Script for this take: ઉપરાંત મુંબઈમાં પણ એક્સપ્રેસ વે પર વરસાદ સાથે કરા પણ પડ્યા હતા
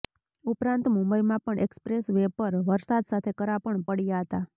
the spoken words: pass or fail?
pass